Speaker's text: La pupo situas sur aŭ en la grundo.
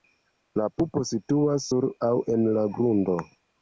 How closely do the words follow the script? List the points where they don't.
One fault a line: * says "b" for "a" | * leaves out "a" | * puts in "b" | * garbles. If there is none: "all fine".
all fine